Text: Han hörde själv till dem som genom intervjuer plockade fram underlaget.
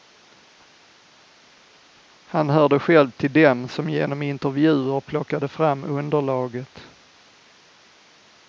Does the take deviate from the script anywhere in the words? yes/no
no